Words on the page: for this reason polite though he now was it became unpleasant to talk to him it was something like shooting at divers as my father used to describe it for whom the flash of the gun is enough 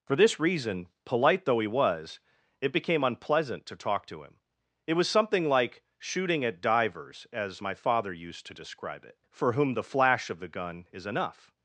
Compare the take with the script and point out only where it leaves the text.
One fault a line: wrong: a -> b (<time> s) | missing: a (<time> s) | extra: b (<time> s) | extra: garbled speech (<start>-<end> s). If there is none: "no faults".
missing: now (1.7 s)